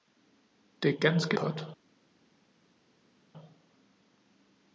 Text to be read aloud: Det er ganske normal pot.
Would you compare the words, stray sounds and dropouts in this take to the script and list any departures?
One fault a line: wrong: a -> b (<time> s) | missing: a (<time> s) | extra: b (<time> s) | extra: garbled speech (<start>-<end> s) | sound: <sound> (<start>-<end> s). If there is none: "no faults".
missing: normal (1.4 s)